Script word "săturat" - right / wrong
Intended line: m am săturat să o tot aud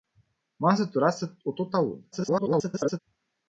right